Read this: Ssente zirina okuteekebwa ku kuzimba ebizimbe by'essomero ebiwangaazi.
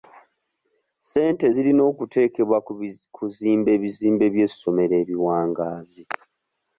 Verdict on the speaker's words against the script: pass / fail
pass